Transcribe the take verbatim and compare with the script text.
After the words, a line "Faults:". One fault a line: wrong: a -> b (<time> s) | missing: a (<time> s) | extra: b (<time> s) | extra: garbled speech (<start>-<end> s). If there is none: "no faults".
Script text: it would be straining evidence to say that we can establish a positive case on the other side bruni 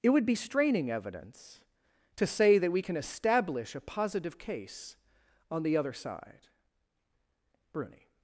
it would be straining evidence to say that we can establish a positive case on the other side bruni
Faults:
no faults